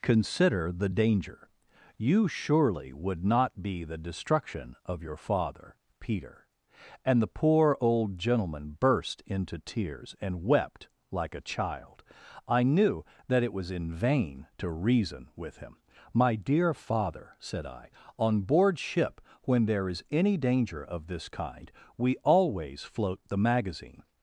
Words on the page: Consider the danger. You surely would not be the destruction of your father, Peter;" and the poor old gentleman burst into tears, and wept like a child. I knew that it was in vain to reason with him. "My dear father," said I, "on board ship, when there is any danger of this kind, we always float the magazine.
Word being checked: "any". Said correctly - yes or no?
yes